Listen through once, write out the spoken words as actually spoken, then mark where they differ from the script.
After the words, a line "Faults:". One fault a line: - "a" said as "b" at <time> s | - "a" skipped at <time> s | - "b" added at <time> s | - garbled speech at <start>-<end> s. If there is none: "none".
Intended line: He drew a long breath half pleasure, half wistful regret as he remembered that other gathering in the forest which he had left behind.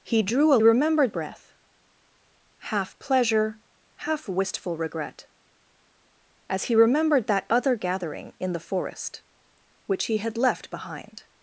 He drew a remembered breath half pleasure, half wistful regret as he remembered that other gathering in the forest which he had left behind.
Faults:
- "long" said as "remembered" at 0.6 s